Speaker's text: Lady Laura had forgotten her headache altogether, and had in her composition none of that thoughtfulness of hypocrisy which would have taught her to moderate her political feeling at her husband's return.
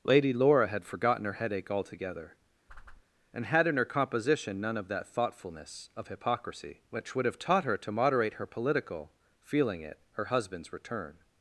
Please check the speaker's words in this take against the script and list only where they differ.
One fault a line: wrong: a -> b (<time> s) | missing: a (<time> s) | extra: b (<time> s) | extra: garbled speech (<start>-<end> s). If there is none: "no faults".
wrong: at -> it (9.8 s)